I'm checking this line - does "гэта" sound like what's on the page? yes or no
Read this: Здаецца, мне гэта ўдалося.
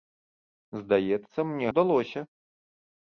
no